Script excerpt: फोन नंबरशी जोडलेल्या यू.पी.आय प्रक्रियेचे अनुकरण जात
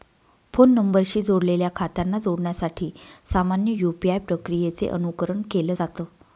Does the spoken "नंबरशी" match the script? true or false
true